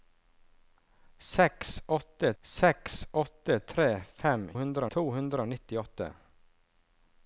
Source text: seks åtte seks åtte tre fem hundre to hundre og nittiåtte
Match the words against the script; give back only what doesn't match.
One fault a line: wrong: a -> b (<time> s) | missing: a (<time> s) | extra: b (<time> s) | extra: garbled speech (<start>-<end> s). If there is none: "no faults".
no faults